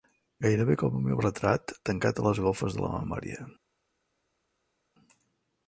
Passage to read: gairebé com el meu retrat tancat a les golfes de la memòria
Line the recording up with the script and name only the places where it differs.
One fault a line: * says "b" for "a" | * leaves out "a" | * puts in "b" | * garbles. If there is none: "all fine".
all fine